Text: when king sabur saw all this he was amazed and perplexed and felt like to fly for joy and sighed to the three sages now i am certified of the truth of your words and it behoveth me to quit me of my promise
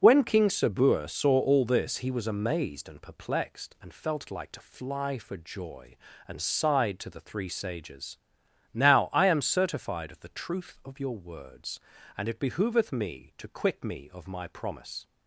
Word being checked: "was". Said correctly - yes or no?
yes